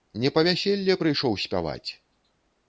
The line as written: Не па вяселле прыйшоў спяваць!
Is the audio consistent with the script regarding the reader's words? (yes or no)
yes